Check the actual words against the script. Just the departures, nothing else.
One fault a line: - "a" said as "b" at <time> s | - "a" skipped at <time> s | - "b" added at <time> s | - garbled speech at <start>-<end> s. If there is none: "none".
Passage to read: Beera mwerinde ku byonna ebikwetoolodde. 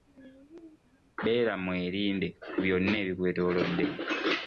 none